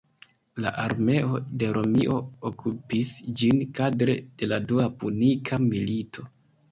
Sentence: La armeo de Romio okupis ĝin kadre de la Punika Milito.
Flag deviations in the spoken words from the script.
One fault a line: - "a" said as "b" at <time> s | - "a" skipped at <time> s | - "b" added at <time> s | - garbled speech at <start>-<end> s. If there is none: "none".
- "Dua" added at 4.7 s